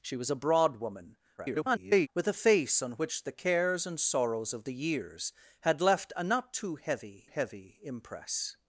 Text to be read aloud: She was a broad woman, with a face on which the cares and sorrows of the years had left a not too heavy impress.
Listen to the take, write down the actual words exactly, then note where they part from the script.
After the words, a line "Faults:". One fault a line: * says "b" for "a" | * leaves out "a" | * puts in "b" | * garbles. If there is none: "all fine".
She was a broad woman, [garbled] with a face on which the cares and sorrows of the years had left a not too heavy heavy impress.
Faults:
* garbles
* puts in "heavy"